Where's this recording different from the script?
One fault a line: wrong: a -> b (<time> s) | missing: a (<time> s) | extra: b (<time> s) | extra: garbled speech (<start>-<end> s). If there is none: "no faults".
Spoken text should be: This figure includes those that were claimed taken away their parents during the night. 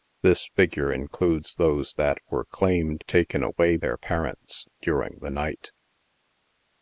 no faults